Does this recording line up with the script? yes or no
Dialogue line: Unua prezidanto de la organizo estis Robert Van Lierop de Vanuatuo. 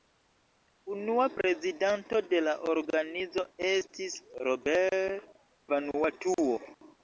no